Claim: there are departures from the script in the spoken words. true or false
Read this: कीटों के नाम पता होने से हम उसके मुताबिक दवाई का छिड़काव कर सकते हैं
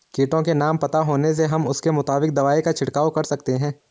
false